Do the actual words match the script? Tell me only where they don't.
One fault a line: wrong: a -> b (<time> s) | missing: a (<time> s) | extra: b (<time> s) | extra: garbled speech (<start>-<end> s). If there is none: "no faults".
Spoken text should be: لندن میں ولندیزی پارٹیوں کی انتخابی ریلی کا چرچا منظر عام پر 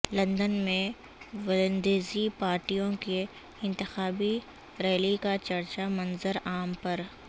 no faults